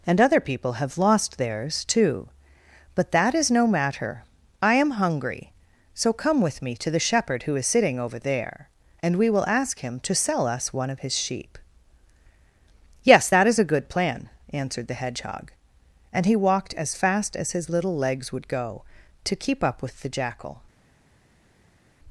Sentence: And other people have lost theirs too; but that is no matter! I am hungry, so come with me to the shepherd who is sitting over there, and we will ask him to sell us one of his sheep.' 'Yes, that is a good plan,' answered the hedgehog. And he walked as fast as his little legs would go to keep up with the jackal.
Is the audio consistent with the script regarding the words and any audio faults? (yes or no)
yes